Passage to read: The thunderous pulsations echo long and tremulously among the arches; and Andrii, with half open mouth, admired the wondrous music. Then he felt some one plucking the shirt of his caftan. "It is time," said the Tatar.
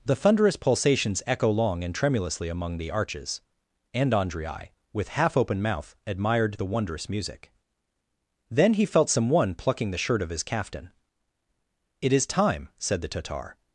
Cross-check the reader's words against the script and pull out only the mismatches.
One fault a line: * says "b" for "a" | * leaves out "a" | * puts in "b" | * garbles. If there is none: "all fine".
all fine